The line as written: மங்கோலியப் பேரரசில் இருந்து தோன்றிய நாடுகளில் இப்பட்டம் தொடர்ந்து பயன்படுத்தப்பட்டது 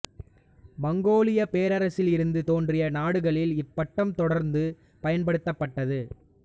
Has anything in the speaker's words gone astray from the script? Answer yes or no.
no